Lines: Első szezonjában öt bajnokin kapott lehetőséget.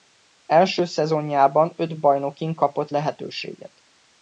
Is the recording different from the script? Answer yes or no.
no